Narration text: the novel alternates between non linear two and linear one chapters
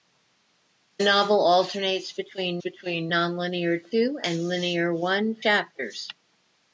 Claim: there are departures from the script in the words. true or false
true